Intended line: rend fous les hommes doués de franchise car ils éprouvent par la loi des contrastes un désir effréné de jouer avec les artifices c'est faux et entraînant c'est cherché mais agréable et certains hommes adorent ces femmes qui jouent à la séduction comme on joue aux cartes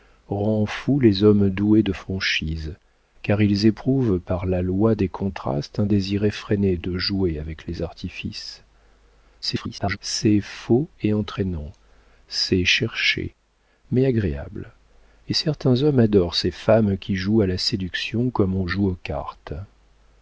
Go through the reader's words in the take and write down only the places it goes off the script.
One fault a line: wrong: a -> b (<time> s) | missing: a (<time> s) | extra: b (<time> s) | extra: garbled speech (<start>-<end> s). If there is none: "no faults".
extra: garbled speech (9.4-10.0 s)